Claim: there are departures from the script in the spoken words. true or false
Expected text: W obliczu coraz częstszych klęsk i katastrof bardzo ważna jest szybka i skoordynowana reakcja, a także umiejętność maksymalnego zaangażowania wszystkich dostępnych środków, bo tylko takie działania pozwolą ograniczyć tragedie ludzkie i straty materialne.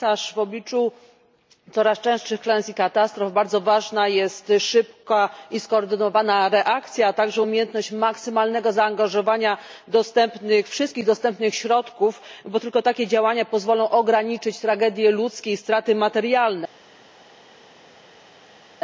false